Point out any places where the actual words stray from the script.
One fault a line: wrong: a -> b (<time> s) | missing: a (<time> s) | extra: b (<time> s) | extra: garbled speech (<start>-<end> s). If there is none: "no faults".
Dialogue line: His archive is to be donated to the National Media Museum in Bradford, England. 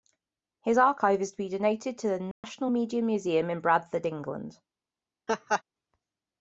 no faults